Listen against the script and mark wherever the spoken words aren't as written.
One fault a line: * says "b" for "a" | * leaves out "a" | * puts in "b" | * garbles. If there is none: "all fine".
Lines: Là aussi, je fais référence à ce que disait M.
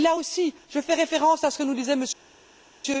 * puts in "nous"